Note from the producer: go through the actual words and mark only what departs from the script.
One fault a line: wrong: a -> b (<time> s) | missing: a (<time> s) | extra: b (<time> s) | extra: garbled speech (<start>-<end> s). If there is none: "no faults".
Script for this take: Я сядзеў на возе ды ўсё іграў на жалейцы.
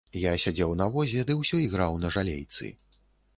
no faults